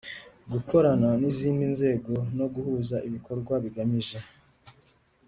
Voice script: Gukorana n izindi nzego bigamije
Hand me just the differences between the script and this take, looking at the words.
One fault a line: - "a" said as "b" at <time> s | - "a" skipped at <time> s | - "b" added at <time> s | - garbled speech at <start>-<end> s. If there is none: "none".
- "no guhuza ibikorwa" added at 2.4 s